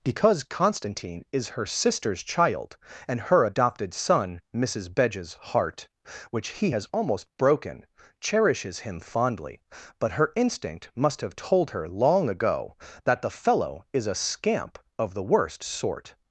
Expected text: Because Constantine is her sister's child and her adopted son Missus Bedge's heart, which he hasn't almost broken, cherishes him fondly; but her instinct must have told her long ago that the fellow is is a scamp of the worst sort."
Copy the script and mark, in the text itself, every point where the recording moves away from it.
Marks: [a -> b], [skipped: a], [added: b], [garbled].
Because Constantine is her sister's child and her adopted son Missus Bedge's heart, which he [hasn't -> has] almost broken, cherishes him fondly; but her instinct must have told her long ago that the fellow is [skipped: is] a scamp of the worst sort."